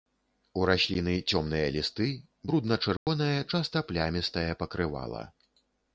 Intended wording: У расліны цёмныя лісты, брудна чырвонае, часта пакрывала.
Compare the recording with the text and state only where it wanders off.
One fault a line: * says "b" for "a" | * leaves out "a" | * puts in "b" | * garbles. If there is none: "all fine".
* puts in "плямістае"